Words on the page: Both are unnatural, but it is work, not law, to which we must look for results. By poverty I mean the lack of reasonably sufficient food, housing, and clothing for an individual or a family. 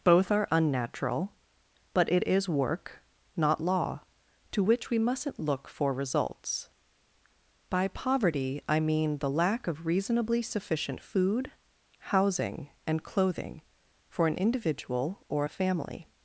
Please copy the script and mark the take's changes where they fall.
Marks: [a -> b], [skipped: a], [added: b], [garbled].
Both are unnatural, but it is work, not law, to which we [must -> mustn't] look for results. By poverty I mean the lack of reasonably sufficient food, housing, and clothing for an individual or a family.